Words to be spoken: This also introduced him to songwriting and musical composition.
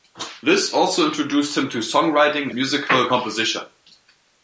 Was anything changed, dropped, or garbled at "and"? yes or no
yes